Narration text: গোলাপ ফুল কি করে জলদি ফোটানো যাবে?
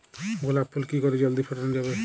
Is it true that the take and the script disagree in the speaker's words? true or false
false